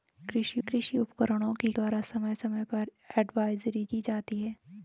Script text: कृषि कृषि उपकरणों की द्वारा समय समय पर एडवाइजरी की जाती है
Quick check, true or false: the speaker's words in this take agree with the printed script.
true